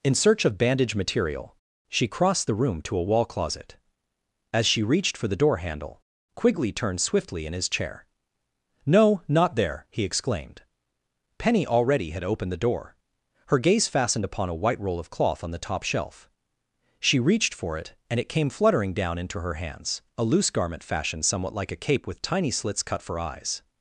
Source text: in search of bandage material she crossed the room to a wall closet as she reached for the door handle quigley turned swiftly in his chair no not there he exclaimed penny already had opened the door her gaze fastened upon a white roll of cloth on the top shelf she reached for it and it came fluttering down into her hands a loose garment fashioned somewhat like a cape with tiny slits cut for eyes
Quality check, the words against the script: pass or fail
pass